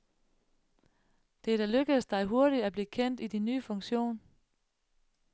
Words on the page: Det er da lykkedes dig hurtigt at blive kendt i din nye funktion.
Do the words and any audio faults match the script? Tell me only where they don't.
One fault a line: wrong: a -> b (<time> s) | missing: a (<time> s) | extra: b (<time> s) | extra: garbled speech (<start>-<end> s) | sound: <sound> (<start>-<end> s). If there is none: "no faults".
no faults